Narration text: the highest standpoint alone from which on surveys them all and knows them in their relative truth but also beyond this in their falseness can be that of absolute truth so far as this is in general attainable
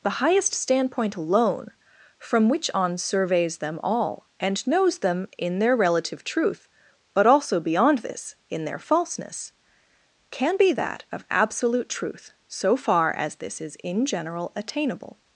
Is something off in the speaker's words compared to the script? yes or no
no